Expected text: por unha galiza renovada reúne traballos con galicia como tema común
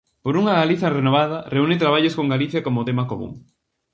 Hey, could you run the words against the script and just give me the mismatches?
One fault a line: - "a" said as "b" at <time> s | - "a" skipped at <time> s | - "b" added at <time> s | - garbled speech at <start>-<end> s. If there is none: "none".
none